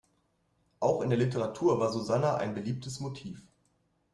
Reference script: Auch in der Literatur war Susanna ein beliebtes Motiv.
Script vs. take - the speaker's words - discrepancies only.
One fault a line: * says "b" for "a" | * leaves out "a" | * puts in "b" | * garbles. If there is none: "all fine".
all fine